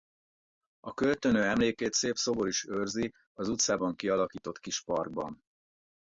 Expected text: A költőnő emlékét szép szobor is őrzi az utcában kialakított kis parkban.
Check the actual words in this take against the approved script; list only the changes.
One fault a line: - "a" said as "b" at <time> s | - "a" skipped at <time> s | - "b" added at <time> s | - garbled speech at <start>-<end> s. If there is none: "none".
none